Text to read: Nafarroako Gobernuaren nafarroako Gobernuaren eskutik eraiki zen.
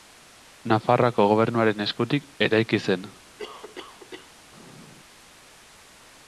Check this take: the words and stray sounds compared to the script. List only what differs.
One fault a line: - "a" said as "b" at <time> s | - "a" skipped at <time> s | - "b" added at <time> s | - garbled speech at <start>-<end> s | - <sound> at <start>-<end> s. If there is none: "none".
- "nafarroako Gobernuaren" skipped at 1.9 s
- cough at 3.4-4.4 s